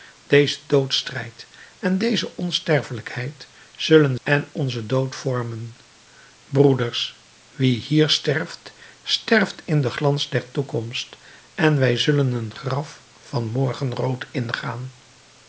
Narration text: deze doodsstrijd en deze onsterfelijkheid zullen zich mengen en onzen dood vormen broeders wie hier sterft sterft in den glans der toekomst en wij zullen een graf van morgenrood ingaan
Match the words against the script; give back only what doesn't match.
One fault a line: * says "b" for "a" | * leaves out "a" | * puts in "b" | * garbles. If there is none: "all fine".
* leaves out "zich mengen"